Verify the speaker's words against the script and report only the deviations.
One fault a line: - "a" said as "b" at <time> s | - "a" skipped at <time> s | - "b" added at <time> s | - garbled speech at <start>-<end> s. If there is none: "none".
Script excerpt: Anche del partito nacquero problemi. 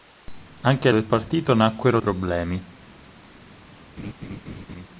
none